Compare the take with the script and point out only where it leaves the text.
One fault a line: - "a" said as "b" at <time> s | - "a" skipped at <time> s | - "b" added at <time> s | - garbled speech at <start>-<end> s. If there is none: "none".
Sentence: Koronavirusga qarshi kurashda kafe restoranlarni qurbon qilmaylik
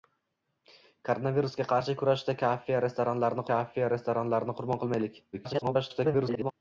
- "kafe restoranlarni" added at 3.5 s
- garbled speech at 5.3-6.5 s